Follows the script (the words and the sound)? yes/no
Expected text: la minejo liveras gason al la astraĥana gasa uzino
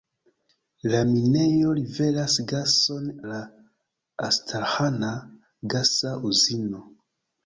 no